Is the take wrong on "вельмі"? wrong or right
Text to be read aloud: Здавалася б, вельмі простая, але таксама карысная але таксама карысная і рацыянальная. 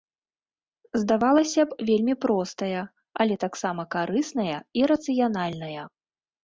right